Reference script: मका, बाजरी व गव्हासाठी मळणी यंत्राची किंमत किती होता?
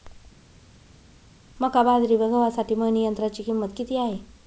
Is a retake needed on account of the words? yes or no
yes